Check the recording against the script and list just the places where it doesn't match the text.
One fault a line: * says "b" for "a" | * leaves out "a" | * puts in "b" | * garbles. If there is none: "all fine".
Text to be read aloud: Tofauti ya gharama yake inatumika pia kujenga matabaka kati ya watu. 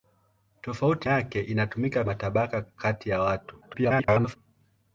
* leaves out "ya gharama"
* leaves out "pia kujenga"
* garbles